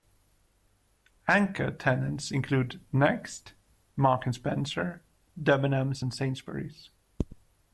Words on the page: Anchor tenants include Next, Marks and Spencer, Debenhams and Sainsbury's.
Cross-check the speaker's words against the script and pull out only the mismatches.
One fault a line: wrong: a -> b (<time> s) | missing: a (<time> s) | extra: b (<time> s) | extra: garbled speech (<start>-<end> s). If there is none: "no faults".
no faults